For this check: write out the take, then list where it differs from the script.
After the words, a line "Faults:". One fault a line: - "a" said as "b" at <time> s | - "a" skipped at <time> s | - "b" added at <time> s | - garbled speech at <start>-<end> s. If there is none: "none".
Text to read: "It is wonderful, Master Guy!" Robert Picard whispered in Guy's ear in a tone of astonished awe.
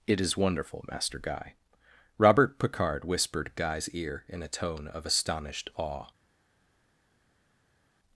"It is wonderful, Master Guy!" Robert Picard whispered Guy's ear in a tone of astonished awe.
Faults:
- "in" skipped at 3.5 s